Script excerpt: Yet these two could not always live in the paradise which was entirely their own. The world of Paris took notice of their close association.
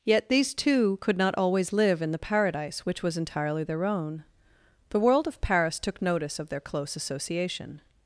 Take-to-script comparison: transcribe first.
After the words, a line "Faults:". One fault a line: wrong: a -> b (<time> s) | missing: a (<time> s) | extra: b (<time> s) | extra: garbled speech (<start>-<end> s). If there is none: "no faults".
Yet these two could not always live in the paradise which was entirely their own. The world of Paris took notice of their close association.
Faults:
no faults